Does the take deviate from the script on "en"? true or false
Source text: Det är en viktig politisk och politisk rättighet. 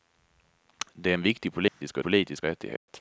false